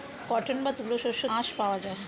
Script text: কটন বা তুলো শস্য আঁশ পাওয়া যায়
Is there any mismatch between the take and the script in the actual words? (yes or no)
no